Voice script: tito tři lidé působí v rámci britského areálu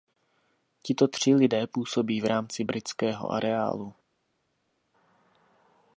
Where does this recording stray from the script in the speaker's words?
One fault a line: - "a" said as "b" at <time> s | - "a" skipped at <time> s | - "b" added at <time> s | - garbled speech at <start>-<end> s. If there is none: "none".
none